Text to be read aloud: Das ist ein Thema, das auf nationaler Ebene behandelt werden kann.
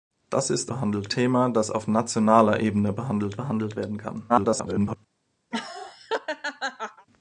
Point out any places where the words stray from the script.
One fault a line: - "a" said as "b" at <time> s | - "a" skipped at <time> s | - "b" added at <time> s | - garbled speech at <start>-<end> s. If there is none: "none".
- "ein" said as "behandelt" at 0.7 s
- "behandelt" added at 3.3 s
- garbled speech at 4.3-5.0 s